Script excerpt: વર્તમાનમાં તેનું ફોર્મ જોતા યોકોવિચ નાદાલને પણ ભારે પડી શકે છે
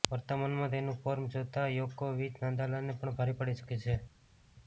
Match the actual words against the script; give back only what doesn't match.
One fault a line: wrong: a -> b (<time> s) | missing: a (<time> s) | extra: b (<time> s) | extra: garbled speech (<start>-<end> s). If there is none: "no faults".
no faults